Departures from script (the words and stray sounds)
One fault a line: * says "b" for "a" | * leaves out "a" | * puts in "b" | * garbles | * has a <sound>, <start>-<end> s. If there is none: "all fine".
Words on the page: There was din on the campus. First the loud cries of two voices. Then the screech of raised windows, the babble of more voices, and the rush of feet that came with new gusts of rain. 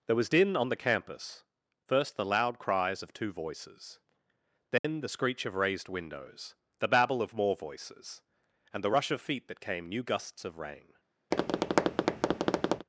* has a dropout, 4.8-4.8 s
* leaves out "with"
* has a tap, 11.3-12.9 s